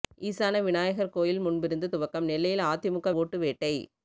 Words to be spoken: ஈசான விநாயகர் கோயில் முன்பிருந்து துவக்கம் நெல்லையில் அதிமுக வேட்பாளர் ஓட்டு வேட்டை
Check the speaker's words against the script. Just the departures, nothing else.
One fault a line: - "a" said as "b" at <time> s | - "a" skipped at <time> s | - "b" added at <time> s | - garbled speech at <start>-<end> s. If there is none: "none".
- "வேட்பாளர்" skipped at 3.1 s